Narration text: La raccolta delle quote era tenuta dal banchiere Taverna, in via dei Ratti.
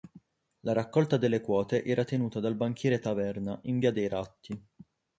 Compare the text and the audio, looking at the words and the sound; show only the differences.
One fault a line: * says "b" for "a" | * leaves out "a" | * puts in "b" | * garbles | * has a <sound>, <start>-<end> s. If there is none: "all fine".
all fine